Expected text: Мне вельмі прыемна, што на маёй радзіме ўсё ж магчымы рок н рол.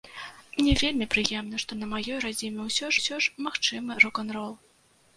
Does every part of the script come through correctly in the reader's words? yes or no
no